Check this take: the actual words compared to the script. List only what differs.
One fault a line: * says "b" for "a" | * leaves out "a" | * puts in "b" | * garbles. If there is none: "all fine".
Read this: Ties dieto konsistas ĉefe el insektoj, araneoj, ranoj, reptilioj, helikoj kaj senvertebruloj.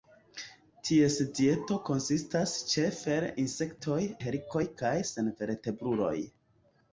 * leaves out "araneoj ranoj reptilioj"